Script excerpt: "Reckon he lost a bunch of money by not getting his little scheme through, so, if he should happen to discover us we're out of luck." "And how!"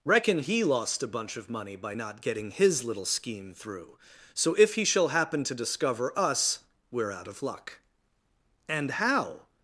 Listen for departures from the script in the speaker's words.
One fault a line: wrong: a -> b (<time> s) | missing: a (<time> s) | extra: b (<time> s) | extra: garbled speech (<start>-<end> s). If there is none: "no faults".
wrong: should -> shall (4.8 s)